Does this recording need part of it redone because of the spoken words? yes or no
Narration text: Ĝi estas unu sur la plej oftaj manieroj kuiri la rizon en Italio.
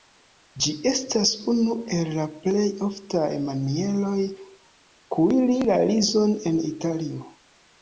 yes